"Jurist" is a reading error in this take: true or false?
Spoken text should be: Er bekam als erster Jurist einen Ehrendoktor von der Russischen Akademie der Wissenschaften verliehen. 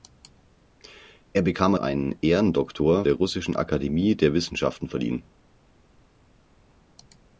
true